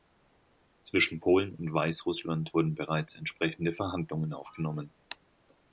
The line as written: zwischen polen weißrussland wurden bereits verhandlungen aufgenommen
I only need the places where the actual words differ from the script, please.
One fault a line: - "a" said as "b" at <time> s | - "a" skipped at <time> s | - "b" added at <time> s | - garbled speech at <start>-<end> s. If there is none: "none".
- "und" added at 1.6 s
- "entsprechende" added at 3.1 s